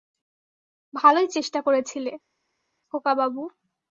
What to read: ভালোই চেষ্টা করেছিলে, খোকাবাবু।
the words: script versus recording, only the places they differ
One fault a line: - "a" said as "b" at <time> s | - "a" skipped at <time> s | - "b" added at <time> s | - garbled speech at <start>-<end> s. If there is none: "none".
none